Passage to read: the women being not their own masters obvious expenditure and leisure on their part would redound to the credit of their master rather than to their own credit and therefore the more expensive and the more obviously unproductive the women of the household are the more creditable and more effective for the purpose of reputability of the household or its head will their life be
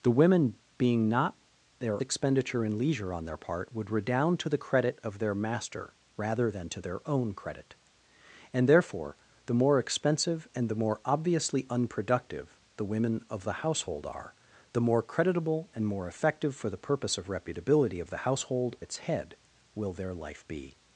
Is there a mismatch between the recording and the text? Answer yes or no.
yes